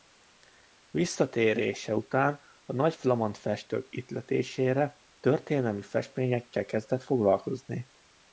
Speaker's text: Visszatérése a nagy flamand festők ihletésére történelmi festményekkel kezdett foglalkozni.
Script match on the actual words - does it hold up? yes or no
no